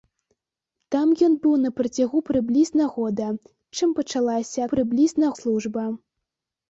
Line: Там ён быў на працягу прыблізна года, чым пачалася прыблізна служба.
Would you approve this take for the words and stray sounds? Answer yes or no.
yes